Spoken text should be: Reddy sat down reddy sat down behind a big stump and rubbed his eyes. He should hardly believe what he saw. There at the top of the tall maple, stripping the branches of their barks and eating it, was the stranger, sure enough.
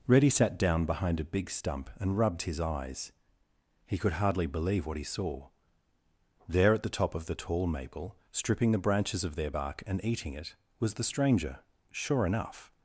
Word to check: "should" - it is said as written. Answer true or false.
false